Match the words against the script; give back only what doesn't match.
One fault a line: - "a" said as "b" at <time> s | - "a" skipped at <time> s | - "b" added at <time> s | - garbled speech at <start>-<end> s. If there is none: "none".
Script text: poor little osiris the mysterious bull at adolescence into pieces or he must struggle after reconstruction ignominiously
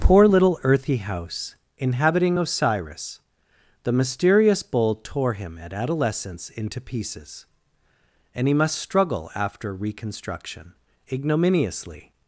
- "earthy house inhabiting" added at 0.6 s
- "tore him" added at 5.0 s
- "or" said as "and" at 8.3 s